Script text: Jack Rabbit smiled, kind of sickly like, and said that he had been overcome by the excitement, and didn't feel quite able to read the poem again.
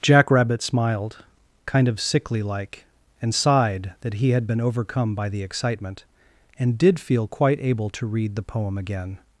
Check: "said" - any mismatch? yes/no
yes